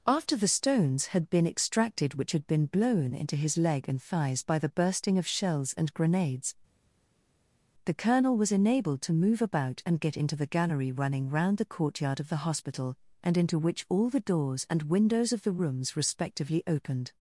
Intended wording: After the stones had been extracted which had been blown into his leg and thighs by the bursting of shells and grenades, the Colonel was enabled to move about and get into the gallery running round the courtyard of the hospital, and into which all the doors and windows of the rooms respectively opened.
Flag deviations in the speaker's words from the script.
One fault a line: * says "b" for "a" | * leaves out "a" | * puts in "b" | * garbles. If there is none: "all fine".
all fine